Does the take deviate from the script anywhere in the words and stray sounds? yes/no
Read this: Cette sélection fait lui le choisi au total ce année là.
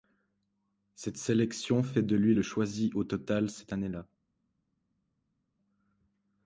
yes